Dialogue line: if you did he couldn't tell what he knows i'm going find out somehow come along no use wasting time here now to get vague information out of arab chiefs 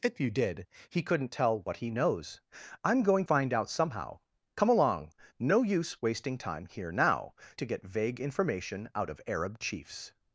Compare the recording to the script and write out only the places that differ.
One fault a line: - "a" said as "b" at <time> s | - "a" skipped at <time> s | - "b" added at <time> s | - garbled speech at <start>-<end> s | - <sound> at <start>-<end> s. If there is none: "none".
none